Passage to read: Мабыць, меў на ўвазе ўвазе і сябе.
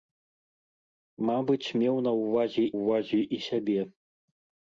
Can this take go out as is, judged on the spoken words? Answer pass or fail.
pass